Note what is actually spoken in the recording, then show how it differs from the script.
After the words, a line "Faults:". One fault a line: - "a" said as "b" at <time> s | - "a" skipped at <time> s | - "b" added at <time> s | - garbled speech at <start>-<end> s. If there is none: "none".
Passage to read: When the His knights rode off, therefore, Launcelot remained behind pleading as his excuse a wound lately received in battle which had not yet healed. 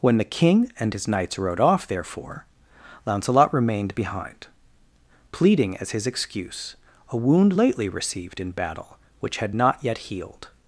When the King and his knights rode off, therefore, Launcelot remained behind pleading as his excuse a wound lately received in battle which had not yet healed.
Faults:
- "King and" added at 0.2 s